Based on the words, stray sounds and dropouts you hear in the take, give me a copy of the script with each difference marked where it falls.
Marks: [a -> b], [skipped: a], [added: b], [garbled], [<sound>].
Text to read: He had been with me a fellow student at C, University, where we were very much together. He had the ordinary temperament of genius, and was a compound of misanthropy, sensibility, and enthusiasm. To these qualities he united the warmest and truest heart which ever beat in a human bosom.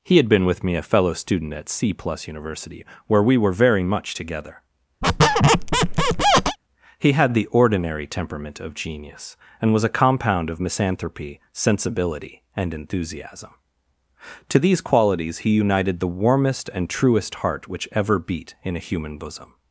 He had been with me a fellow student at C, [added: plus] University, where we were very much together. [squeak] He had the ordinary temperament of genius, and was a compound of misanthropy, sensibility, and enthusiasm. To these qualities he united the warmest and truest heart which ever beat in a human bosom.